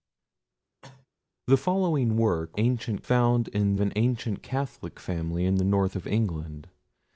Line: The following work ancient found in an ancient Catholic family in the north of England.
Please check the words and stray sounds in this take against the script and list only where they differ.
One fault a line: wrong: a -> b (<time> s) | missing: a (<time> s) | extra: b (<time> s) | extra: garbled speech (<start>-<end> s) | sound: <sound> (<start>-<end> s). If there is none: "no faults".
sound: cough (0.8-1.1 s)